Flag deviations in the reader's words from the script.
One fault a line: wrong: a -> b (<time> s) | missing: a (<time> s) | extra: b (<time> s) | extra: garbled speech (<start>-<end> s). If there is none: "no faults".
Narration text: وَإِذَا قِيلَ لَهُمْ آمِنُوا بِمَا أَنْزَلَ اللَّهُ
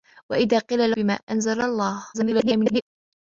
missing: لَهُمْ آمِنُوا (0.9 s)
extra: garbled speech (2.1-2.8 s)